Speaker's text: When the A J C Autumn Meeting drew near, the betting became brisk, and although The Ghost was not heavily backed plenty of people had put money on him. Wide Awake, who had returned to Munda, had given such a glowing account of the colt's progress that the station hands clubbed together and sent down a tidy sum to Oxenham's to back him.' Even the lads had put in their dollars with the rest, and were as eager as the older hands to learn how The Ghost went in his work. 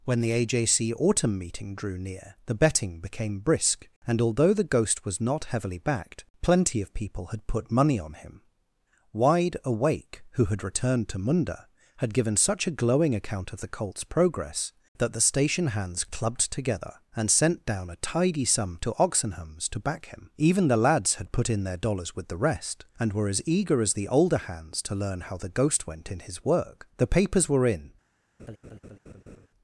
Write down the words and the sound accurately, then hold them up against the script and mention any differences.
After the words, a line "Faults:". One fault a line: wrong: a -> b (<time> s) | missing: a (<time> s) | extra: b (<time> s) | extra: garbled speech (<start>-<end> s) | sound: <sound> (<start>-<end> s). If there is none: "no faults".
When the A J C Autumn Meeting drew near, the betting became brisk, and although The Ghost was not heavily backed plenty of people had put money on him. Wide Awake, who had returned to Munda, had given such a glowing account of the colt's progress that the station hands clubbed together and sent down a tidy sum to Oxenham's to back him.' Even the lads had put in their dollars with the rest, and were as eager as the older hands to learn how The Ghost went in his work. The papers were in
Faults:
extra: The papers were in (27.0 s)
sound: laugh (28.4-29.5 s)